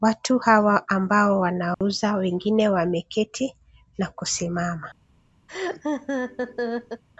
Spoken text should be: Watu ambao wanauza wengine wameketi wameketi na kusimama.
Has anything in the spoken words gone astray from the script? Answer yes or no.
yes